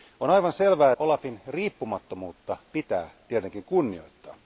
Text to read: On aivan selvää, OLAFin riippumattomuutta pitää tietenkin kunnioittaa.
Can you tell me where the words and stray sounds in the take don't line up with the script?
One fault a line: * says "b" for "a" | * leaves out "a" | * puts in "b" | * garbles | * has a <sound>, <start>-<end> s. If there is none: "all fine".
all fine